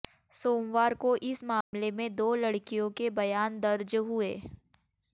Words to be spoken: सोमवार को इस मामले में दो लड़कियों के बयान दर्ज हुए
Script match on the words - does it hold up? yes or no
yes